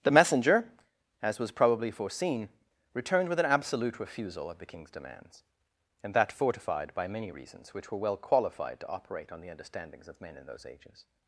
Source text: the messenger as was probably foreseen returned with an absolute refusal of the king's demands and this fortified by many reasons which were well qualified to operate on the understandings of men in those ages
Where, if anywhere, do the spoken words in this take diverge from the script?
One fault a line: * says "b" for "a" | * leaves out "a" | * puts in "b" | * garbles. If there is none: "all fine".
* says "that" for "this"